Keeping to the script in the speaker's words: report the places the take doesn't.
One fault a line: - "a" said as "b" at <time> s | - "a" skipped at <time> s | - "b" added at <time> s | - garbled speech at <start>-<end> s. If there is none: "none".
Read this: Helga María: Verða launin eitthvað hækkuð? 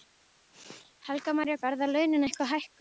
none